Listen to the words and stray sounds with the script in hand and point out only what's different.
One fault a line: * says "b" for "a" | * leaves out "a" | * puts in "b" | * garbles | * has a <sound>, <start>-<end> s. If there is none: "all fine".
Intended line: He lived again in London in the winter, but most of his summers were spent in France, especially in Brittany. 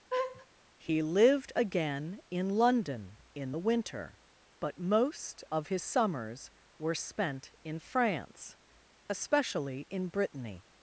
* has a laugh, 0.1-0.5 s